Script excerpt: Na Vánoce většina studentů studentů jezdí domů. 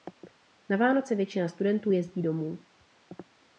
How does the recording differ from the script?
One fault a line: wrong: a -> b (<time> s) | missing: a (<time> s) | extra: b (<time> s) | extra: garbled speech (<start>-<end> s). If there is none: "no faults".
missing: studentů (1.9 s)